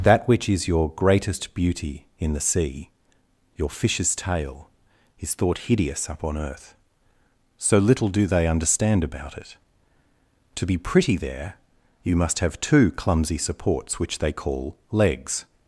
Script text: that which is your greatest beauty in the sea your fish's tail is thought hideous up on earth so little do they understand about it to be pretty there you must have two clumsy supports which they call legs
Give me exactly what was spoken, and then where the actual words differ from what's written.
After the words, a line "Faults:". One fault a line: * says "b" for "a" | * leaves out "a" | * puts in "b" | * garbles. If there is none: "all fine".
that which is your greatest beauty in the sea your fish's tail is thought hideous up on earth so little do they understand about it to be pretty there you must have two clumsy supports which they call legs
Faults:
all fine